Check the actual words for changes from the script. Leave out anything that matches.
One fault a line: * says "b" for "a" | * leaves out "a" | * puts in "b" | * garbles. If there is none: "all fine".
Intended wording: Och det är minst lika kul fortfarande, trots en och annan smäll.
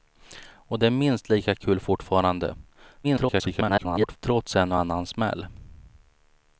* garbles